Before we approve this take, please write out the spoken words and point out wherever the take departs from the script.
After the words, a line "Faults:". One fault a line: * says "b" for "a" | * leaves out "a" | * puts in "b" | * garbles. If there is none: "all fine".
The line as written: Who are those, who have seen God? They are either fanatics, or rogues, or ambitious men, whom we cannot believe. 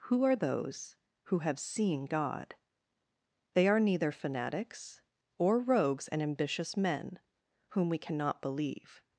Who are those, who have seen God? They are neither fanatics, or rogues, and ambitious men, whom we cannot believe.
Faults:
* says "neither" for "either"
* says "and" for "or"